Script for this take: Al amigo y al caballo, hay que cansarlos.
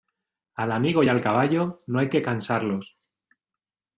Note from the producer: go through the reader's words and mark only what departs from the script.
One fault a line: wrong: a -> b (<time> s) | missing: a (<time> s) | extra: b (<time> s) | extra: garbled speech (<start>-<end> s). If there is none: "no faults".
extra: no (1.9 s)